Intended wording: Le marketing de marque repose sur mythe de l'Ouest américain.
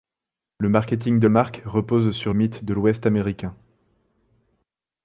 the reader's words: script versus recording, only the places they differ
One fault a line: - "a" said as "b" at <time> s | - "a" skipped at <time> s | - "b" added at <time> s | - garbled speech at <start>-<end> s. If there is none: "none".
none